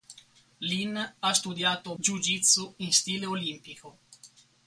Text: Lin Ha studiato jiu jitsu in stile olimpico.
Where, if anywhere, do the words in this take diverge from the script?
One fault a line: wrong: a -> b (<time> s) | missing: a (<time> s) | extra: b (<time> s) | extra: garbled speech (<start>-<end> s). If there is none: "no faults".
no faults